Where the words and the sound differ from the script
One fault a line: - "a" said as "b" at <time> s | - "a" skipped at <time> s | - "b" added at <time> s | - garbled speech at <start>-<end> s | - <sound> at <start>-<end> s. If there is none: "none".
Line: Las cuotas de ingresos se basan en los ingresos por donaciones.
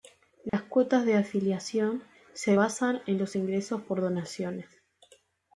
- dropout at 0.5-0.5 s
- "ingresos" said as "afiliación" at 1.1 s